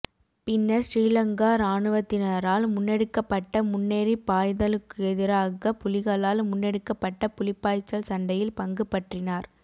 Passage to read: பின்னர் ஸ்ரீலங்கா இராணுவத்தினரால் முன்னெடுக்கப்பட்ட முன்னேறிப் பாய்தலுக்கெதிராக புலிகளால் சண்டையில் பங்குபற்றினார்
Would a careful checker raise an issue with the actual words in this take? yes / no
yes